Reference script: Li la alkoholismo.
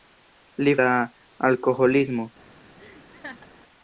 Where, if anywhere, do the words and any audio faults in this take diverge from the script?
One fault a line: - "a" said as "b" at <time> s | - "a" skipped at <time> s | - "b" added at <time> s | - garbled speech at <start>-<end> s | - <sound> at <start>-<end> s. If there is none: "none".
- laugh at 2.8-3.5 s